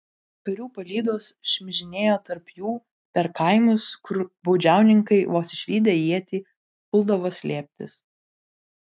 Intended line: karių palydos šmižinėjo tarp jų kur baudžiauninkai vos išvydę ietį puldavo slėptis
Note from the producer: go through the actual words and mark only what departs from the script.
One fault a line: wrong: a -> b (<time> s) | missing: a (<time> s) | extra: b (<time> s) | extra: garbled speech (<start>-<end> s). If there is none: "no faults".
extra: per kaimus (3.2 s)